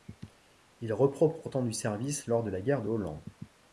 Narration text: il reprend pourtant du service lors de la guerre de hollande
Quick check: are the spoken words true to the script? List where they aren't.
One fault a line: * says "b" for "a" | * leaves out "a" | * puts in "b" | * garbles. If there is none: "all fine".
all fine